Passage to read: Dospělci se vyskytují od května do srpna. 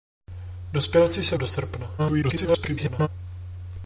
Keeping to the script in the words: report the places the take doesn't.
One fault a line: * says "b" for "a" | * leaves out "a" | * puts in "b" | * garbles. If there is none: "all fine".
* leaves out "vyskytují od května"
* garbles